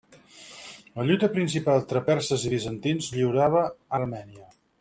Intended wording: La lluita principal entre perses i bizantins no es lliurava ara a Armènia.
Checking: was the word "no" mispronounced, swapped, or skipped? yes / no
yes